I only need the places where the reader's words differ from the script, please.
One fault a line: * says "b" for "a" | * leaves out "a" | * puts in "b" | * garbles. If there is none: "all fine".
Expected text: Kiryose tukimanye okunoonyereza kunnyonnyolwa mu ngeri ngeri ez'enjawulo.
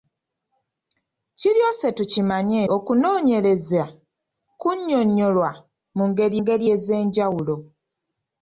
all fine